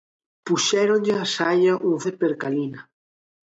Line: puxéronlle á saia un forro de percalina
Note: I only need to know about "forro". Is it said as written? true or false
false